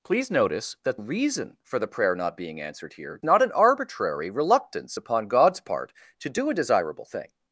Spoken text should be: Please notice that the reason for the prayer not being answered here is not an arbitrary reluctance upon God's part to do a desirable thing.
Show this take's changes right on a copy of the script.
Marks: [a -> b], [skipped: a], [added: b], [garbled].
Please notice that [skipped: the] reason for the prayer not being answered here [skipped: is] not an arbitrary reluctance upon God's part to do a desirable thing.